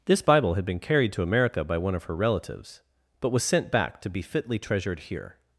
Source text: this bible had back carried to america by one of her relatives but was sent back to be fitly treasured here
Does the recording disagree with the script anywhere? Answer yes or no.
yes